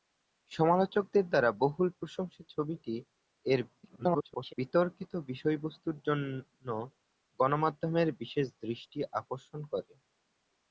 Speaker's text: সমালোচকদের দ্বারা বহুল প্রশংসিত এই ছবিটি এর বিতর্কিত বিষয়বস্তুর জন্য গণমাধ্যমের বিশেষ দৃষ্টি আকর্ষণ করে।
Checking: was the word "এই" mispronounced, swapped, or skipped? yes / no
yes